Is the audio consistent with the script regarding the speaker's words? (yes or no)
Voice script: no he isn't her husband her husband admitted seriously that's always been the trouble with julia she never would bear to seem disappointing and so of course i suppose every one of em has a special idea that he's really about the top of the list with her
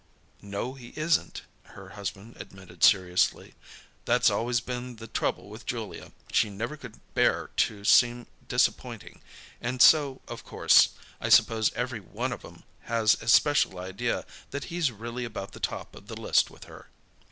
no